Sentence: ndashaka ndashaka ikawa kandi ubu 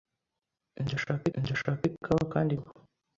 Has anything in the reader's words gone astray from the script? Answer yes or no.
no